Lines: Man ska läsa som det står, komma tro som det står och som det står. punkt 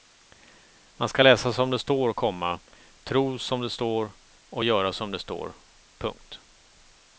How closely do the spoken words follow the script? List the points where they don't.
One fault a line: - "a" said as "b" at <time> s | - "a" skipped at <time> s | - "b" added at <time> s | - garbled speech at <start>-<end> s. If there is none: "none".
- "göra" added at 4.6 s